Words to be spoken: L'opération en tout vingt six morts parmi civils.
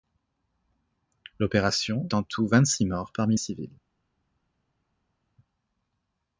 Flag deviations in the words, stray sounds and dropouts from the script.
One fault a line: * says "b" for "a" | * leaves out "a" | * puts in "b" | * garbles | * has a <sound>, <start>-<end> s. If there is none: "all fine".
all fine